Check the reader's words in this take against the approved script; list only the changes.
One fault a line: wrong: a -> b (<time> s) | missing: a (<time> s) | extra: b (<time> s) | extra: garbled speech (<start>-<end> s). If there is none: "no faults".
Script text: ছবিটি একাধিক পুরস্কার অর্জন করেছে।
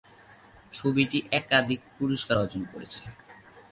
no faults